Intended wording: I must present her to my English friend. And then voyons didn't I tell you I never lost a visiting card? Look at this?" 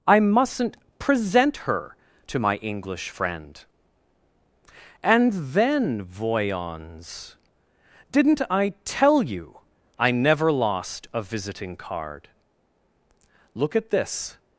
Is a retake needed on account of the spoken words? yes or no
yes